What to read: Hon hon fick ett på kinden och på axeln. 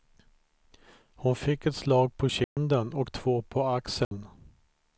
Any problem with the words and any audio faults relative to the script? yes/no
yes